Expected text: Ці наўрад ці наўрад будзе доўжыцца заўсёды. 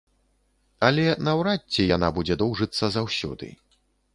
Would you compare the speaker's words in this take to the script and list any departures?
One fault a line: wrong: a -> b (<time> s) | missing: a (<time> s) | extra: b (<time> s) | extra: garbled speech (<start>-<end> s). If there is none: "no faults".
wrong: Ці -> Але (0.9 s)
wrong: наўрад -> яна (2.0 s)